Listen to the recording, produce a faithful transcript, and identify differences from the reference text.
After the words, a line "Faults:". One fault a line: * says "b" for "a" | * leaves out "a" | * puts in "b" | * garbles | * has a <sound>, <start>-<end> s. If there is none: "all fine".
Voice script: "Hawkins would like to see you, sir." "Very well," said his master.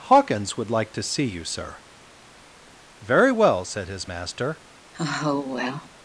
"Hawkins would like to see you, sir." "Very well," said his master.
Faults:
* has a sigh, 4.9-5.9 s